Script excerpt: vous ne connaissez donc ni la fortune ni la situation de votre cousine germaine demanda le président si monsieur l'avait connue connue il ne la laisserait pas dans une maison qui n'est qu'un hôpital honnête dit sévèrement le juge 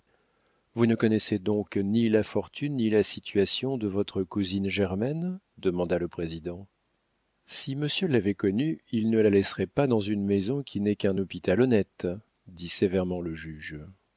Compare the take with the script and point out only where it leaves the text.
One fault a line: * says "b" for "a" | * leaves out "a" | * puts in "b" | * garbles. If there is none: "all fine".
* leaves out "connue"